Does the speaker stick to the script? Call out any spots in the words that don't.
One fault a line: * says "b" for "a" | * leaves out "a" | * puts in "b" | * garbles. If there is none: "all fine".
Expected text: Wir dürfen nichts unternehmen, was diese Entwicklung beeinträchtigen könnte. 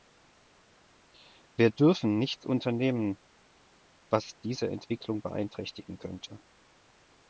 all fine